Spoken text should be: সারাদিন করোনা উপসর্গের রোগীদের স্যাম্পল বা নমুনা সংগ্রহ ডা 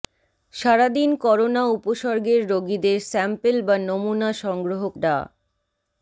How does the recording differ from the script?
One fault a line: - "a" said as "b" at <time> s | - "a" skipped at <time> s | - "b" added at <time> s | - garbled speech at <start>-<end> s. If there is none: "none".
none